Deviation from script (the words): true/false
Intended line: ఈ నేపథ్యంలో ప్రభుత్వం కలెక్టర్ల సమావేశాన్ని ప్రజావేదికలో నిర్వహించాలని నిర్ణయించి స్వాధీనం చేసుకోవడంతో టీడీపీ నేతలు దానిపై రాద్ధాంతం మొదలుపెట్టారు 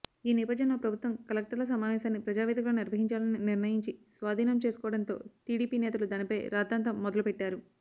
false